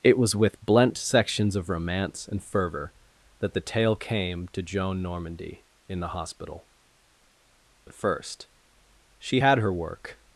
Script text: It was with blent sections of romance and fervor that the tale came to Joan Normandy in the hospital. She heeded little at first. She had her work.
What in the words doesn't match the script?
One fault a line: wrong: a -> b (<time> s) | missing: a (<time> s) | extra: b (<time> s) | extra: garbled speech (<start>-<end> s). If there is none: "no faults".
missing: She heeded little (6.7 s)